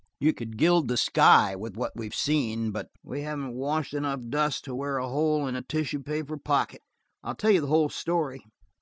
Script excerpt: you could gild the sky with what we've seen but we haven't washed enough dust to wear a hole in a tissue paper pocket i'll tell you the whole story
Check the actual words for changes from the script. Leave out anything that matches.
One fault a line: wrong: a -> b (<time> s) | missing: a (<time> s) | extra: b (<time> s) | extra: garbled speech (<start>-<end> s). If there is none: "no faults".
no faults